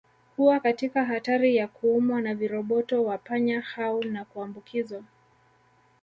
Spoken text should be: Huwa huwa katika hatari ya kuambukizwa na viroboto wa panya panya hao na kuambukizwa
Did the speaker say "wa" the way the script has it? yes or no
yes